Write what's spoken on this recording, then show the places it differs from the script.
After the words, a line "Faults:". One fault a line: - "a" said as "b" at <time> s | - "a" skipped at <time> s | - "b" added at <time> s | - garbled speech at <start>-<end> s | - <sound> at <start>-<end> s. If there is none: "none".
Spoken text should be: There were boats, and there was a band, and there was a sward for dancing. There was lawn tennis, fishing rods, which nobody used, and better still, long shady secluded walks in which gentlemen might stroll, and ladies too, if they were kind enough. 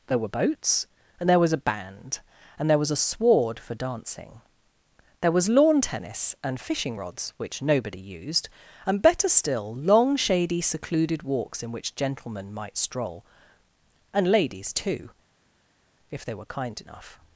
There were boats, and there was a band, and there was a sward for dancing. There was lawn tennis, and fishing rods, which nobody used, and better still, long shady secluded walks in which gentlemen might stroll, and ladies too, if they were kind enough.
Faults:
- "and" added at 6.4 s